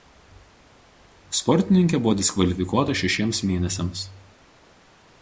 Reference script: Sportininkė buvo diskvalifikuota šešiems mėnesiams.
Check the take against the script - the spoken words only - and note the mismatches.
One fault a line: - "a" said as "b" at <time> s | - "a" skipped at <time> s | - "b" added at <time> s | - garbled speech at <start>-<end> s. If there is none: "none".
none